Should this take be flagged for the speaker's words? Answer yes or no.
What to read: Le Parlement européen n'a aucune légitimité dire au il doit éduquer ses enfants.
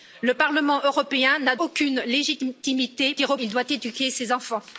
no